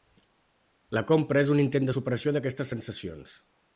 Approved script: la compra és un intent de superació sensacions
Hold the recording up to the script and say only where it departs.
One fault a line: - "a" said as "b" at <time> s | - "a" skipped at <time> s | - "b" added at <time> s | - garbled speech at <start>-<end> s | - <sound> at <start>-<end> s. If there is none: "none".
- "d'aquestes" added at 2.4 s